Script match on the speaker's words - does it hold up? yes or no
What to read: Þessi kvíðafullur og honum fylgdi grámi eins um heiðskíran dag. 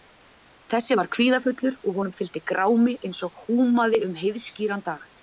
no